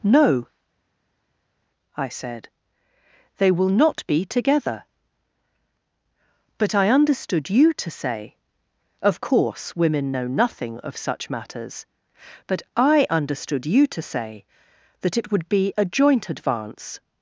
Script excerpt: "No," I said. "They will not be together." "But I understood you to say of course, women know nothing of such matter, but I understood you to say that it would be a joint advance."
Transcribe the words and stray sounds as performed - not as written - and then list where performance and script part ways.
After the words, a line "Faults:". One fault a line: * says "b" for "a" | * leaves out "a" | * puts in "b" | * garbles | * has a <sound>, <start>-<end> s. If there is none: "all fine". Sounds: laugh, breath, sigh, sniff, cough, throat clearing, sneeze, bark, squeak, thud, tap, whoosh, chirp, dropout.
"No," I said. "They will not be together." "But I understood you to say of course, women know nothing of such matters, but I understood you to say that it would be a joint advance."
Faults:
* says "matters" for "matter"